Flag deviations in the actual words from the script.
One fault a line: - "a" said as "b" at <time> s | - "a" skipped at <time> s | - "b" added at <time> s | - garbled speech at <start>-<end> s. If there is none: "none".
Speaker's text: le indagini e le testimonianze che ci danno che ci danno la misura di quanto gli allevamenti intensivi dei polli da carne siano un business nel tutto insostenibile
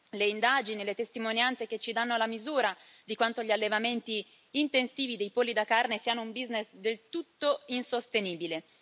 - "che ci danno" skipped at 2.2 s
- "nel" said as "del" at 6.7 s